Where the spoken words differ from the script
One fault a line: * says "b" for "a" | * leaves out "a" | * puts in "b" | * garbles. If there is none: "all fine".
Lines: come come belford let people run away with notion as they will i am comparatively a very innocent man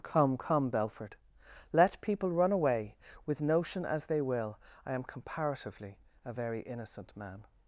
all fine